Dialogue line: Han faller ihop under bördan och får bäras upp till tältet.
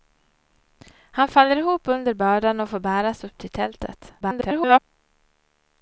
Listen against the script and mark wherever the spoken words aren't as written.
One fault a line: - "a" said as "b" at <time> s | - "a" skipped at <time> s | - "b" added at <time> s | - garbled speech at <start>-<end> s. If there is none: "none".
- garbled speech at 4.2-4.8 s